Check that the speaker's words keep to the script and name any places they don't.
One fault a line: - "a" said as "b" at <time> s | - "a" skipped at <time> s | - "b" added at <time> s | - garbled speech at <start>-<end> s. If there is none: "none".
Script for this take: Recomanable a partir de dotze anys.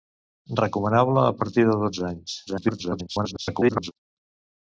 - garbled speech at 2.5-3.9 s